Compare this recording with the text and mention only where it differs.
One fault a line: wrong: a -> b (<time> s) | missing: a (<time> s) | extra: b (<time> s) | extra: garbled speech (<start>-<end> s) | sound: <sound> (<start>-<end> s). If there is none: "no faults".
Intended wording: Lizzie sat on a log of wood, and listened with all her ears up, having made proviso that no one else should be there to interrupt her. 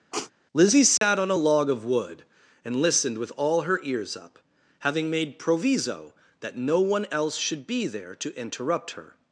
sound: sniff (0.1-0.3 s)
sound: dropout (1.0-1.0 s)